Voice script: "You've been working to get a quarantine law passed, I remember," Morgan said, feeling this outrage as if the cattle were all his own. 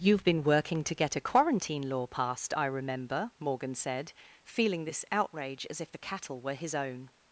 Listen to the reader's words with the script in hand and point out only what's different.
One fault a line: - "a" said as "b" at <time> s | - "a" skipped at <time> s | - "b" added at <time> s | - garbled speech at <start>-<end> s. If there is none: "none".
- "all" skipped at 6.5 s